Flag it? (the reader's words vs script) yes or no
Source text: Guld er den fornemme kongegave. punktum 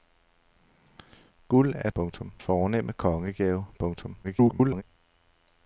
yes